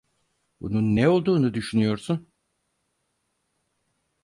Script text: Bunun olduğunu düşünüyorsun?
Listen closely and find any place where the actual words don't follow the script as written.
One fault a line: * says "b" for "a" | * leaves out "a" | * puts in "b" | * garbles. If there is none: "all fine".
* puts in "ne"